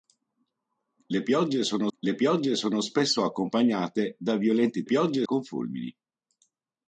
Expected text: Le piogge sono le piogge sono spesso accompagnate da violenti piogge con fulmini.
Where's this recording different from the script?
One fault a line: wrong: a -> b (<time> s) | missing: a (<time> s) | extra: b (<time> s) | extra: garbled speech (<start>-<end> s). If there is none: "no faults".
no faults